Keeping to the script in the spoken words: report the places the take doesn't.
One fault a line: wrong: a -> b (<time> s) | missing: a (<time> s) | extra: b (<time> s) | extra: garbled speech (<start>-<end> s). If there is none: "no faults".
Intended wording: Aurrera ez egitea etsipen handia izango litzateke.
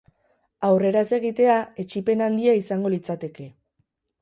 no faults